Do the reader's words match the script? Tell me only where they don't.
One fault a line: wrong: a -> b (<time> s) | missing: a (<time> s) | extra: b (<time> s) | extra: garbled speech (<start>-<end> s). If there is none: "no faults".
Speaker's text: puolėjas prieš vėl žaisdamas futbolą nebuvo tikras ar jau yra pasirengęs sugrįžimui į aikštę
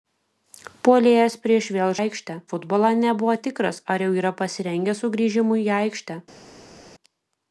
wrong: žaisdamas -> aikštę (2.0 s)